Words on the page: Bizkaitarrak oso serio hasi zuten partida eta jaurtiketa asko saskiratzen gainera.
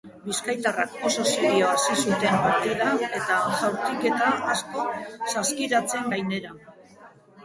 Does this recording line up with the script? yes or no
yes